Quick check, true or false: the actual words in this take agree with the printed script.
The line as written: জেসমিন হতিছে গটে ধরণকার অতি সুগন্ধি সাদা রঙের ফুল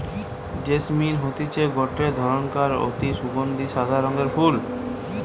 true